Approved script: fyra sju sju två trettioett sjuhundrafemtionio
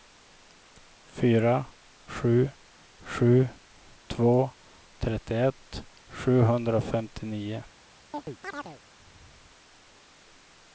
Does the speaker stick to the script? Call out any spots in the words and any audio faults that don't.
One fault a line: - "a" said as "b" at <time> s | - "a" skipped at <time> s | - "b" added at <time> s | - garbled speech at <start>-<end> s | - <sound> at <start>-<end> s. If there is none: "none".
- chirp at 8.1-8.8 s